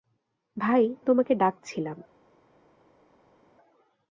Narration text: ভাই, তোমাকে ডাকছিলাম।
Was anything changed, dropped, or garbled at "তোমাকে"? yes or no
no